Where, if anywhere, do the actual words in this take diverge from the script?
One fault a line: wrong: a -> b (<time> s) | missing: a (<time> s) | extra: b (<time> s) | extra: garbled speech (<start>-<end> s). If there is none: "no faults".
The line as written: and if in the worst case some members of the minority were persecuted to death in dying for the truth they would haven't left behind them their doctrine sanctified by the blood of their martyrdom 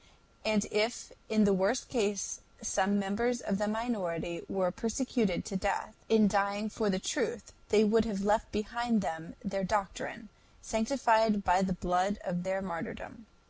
wrong: haven't -> have (8.1 s)